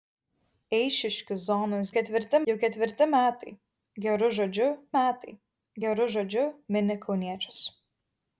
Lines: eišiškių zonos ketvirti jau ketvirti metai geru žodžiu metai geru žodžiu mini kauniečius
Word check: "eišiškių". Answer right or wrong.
right